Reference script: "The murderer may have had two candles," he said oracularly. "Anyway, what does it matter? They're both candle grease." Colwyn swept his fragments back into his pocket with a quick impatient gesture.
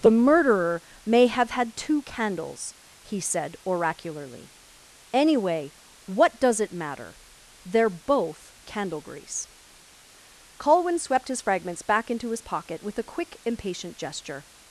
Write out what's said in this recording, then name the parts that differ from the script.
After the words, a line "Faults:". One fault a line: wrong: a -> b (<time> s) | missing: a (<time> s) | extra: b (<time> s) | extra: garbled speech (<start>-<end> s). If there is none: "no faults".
"The murderer may have had two candles," he said oracularly. "Anyway, what does it matter? They're both candle grease." Colwyn swept his fragments back into his pocket with a quick impatient gesture.
Faults:
no faults